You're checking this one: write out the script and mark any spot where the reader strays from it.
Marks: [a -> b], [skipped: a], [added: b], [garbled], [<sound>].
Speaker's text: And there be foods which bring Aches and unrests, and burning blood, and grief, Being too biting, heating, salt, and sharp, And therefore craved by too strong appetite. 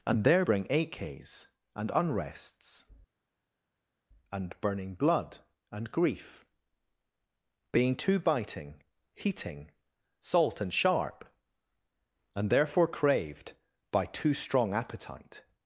And there [skipped: be foods which] bring Aches and unrests, and burning blood, and grief, Being too biting, heating, salt, and sharp, And therefore craved by too strong appetite.